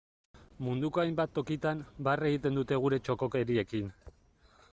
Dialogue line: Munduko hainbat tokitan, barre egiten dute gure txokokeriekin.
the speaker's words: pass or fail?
pass